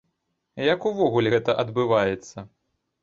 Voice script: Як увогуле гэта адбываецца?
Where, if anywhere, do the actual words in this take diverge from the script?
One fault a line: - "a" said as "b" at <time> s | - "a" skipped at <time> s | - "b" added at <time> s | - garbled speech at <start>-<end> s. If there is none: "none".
none